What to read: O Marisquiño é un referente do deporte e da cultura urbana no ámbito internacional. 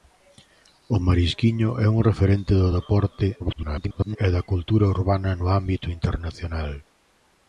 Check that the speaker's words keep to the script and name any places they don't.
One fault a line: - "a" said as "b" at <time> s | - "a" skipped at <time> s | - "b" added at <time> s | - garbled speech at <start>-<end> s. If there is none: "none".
- garbled speech at 3.4-4.2 s